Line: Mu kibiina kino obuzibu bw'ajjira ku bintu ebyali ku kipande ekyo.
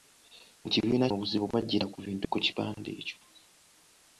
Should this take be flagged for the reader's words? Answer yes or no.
yes